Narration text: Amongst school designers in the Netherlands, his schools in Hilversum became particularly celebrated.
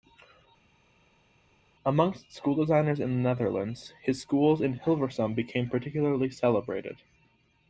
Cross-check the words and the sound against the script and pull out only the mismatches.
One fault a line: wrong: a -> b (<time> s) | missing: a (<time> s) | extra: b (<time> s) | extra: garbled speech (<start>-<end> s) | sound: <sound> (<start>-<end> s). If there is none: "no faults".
no faults